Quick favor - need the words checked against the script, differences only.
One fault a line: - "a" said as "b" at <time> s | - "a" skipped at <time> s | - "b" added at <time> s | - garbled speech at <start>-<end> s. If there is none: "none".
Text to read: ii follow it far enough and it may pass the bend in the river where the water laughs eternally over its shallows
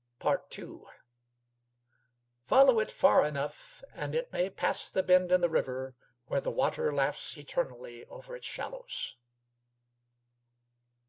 none